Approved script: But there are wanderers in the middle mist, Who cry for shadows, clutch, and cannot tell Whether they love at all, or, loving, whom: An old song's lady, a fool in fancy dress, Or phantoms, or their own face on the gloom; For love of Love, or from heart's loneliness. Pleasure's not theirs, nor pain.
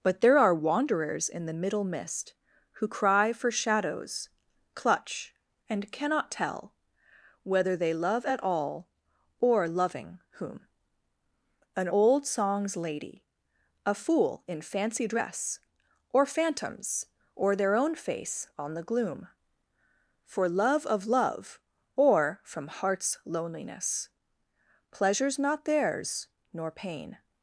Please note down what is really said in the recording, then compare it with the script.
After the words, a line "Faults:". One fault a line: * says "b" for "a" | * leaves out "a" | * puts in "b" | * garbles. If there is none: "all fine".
But there are wanderers in the middle mist, Who cry for shadows, clutch, and cannot tell Whether they love at all, or, loving, whom: An old song's lady, a fool in fancy dress, Or phantoms, or their own face on the gloom; For love of Love, or from heart's loneliness. Pleasure's not theirs, nor pain.
Faults:
all fine